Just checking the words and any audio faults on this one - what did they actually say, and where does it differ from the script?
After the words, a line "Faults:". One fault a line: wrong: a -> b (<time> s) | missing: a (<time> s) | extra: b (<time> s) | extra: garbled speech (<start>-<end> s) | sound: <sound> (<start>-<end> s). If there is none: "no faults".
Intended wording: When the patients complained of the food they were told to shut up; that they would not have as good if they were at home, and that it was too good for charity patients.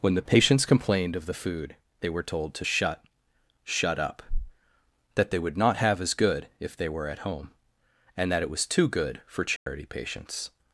When the patients complained of the food they were told to shut shut up; that they would not have as good if they were at home, and that it was too good for charity patients.
Faults:
extra: shut (3.7 s)
sound: dropout (9.6-9.7 s)